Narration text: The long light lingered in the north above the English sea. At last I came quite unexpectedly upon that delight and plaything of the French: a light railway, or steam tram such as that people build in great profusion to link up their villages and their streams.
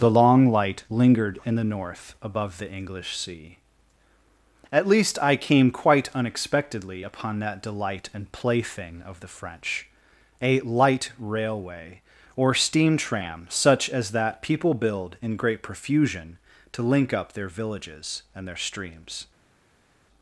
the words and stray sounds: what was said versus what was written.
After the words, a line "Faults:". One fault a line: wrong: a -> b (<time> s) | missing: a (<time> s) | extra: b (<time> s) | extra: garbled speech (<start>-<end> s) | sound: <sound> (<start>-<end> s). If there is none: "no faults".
The long light lingered in the north above the English sea. At least I came quite unexpectedly upon that delight and plaything of the French: a light railway, or steam tram such as that people build in great profusion to link up their villages and their streams.
Faults:
wrong: last -> least (4.9 s)